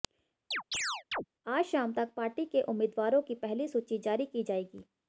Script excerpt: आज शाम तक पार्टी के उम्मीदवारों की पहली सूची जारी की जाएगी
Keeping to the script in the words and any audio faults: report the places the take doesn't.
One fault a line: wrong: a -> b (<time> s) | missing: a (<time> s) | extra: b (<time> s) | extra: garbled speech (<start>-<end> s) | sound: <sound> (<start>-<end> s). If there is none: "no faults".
sound: chirp (0.5-1.2 s)